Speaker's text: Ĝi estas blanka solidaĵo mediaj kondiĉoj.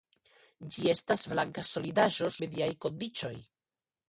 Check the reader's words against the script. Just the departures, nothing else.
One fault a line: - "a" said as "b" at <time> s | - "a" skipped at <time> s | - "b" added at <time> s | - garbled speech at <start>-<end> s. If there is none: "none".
none